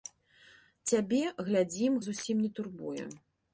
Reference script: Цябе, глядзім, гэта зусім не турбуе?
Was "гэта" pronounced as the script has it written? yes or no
no